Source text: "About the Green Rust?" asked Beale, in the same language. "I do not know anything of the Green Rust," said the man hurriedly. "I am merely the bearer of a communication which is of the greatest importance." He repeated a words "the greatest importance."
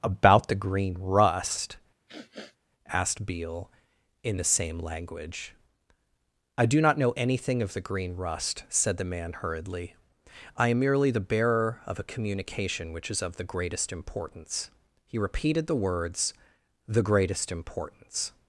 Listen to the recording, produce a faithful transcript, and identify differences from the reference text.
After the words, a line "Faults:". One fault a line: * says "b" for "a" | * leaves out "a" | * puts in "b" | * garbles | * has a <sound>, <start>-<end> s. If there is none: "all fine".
"About the Green Rust?" asked Beale, in the same language. "I do not know anything of the Green Rust," said the man hurriedly. "I am merely the bearer of a communication which is of the greatest importance." He repeated the words "the greatest importance."
Faults:
* has a sniff, 2.1-2.6 s
* says "the" for "a"